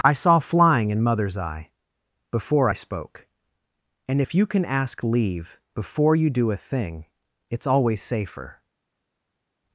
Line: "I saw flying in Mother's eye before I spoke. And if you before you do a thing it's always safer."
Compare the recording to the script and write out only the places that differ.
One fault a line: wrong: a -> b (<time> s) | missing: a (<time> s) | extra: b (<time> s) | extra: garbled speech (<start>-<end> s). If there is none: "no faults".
extra: can ask leave (4.5 s)